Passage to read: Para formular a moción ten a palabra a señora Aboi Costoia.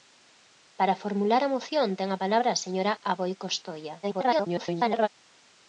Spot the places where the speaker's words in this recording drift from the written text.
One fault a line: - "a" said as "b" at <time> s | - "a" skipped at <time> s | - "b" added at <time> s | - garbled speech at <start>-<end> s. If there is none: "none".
- garbled speech at 4.0-5.1 s